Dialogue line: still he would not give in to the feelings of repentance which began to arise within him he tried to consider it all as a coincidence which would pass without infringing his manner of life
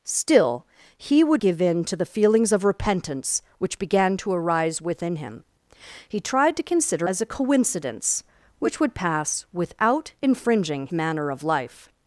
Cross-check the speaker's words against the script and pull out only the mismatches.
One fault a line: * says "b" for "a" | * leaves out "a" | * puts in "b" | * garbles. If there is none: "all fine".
* leaves out "not"
* leaves out "it all"
* leaves out "his"